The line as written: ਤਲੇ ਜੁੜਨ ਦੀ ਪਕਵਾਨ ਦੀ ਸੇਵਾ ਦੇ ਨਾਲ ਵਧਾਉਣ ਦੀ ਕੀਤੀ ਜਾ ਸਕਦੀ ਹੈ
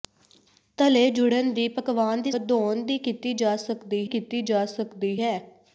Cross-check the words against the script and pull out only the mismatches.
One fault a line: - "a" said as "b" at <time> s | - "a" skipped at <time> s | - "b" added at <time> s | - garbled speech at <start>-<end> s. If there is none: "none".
- "ਸੇਵਾ ਦੇ ਨਾਲ ਵਧਾਉਣ ਦੀ" said as "ਵਧਾਉਣ ਦੀ ਕੀਤੀ ਜਾ ਸਕਦੀ" at 2.3 s